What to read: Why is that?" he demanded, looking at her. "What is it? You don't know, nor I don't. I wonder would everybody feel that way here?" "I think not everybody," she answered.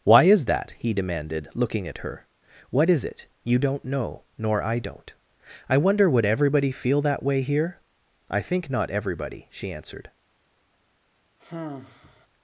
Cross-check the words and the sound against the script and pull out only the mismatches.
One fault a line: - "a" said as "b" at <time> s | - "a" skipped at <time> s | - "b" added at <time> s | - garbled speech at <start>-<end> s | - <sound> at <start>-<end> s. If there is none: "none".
- sigh at 11.4-12.3 s